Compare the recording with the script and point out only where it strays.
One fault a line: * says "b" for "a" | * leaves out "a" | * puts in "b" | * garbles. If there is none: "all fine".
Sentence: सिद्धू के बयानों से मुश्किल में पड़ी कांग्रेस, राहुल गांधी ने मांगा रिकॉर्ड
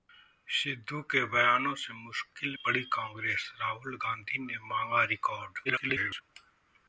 * leaves out "में"
* garbles